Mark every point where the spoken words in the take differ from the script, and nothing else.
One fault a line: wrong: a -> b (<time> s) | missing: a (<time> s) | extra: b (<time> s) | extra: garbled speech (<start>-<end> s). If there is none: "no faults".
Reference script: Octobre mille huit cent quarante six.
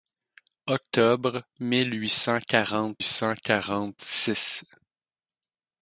extra: cent quarante (3.0 s)